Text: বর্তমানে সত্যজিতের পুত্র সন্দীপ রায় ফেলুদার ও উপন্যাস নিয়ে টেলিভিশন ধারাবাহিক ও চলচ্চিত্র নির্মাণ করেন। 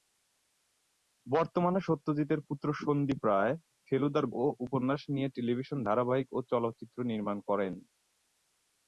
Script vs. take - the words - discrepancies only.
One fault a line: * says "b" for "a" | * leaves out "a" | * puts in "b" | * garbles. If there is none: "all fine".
all fine